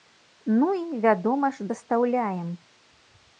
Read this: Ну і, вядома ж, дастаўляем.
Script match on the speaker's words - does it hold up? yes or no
yes